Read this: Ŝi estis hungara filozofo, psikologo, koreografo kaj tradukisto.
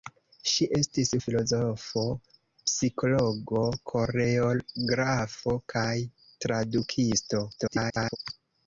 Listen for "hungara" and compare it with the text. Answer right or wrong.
wrong